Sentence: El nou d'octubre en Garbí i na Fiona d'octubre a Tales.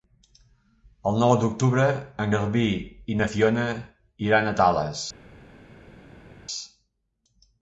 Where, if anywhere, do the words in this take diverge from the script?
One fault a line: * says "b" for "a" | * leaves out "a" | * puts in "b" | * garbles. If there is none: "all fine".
* says "iran" for "d'octubre"